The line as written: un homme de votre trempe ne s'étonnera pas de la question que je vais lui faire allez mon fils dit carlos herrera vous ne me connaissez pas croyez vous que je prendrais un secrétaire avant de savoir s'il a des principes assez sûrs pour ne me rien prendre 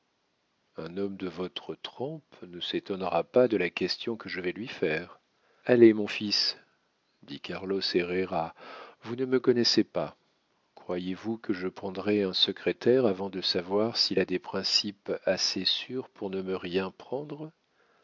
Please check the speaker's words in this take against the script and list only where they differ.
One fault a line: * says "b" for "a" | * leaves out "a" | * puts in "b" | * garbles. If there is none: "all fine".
all fine